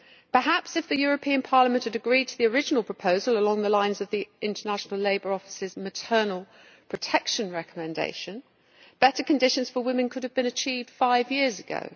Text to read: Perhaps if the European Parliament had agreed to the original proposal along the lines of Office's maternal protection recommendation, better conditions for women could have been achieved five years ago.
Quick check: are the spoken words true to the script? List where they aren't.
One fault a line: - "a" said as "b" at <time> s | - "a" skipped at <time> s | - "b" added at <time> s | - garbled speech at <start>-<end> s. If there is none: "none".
- "the International Labour" added at 4.1 s